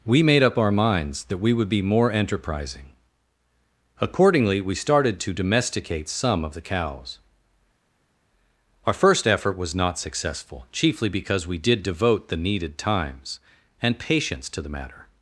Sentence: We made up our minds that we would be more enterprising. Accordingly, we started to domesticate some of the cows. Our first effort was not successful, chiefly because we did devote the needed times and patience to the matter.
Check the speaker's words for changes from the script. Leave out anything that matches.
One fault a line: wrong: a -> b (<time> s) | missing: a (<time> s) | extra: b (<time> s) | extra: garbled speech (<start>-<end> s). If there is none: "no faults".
no faults